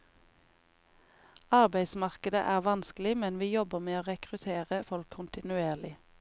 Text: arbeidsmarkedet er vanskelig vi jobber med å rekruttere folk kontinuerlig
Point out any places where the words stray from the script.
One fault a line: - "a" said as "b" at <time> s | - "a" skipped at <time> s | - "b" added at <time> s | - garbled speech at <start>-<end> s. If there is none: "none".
- "men" added at 3.2 s